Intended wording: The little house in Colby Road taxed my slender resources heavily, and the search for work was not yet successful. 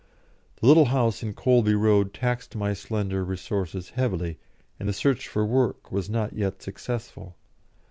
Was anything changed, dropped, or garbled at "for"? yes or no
no